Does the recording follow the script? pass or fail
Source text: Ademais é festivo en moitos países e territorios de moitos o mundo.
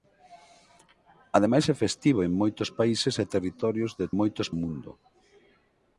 pass